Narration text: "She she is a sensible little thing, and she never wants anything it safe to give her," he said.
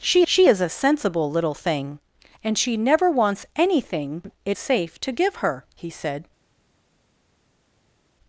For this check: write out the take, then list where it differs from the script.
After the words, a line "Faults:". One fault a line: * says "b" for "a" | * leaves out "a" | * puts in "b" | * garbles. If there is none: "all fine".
"She she is a sensible little thing, and she never wants anything it safe to give her," he said.
Faults:
all fine